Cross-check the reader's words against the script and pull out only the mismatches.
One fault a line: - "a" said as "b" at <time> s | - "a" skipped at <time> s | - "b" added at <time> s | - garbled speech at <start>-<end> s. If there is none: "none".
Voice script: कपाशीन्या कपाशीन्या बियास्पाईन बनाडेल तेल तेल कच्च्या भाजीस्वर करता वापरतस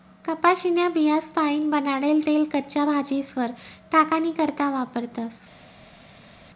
- "कपाशीन्या" skipped at 0.9 s
- "तेल" skipped at 2.4 s
- "टाकानी" added at 3.9 s